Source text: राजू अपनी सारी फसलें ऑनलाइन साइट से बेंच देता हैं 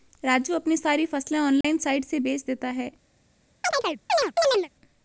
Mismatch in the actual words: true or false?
false